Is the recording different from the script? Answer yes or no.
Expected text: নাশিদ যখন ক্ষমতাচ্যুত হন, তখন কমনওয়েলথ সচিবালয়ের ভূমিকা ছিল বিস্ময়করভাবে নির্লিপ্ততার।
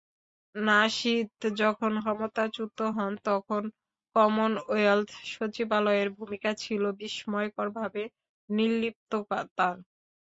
no